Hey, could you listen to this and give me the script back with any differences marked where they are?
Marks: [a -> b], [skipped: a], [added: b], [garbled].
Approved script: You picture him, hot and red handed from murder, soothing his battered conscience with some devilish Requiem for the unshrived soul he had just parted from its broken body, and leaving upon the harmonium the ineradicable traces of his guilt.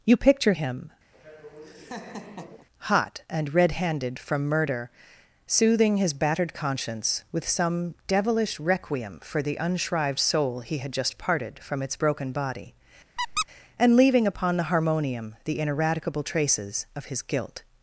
You picture him, hot and red handed from murder, soothing his battered conscience with some devilish Requiem for the unshrived soul he had just parted from its broken body, and leaving upon the harmonium the ineradicable traces of his guilt.